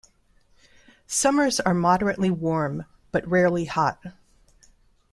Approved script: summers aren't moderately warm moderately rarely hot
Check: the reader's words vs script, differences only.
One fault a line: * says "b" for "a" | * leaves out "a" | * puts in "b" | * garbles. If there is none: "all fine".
* says "are" for "aren't"
* says "but" for "moderately"